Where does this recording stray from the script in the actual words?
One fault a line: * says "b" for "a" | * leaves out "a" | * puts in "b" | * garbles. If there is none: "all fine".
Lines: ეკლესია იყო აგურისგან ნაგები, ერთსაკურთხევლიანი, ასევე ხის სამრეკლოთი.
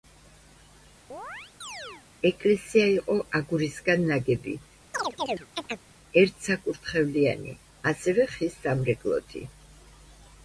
all fine